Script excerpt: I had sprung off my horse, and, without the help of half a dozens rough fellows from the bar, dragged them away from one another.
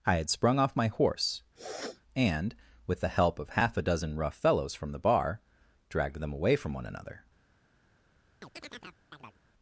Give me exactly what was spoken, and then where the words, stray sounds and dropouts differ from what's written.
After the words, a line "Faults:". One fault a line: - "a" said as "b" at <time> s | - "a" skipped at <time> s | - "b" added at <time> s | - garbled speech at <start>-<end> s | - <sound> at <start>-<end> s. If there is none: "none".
I had sprung off my horse, and, with the help of half a dozen rough fellows from the bar, dragged them away from one another.
Faults:
- sniff at 1.6-2.0 s
- "without" said as "with" at 2.9 s
- "dozens" said as "dozen" at 3.8 s
- chirp at 8.4-9.4 s